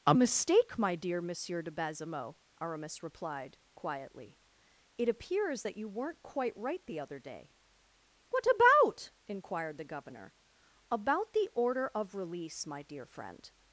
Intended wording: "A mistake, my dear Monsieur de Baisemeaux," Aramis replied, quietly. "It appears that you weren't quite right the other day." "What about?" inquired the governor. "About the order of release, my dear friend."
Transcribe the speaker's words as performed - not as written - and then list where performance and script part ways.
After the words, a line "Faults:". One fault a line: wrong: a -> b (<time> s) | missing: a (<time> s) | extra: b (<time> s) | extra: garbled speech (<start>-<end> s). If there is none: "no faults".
"A mistake, my dear Monsieur de Baisemeaux," Aramis replied, quietly. "It appears that you weren't quite right the other day." "What about?" inquired the governor. "About the order of release, my dear friend."
Faults:
no faults